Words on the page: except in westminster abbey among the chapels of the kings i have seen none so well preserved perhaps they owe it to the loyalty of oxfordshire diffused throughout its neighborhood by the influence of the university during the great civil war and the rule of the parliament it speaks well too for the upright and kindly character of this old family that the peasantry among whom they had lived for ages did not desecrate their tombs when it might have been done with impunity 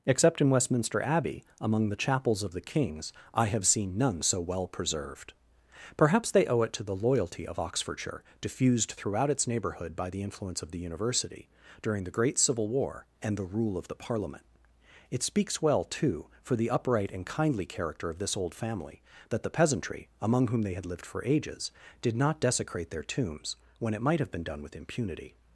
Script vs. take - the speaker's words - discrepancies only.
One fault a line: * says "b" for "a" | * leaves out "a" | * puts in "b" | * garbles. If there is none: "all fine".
all fine